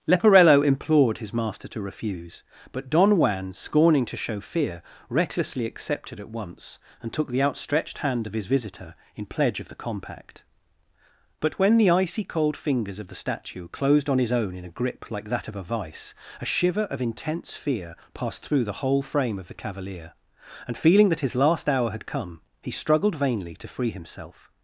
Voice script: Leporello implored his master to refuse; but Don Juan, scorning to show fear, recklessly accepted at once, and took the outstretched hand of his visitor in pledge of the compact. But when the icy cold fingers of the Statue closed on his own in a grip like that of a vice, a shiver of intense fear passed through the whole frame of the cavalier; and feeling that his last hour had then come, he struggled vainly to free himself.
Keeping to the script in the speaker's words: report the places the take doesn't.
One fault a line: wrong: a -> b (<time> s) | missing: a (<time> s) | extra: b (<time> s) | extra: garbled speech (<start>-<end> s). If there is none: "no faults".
missing: then (22.1 s)